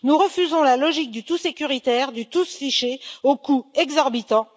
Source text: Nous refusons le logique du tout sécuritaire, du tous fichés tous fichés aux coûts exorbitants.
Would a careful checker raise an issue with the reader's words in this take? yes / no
yes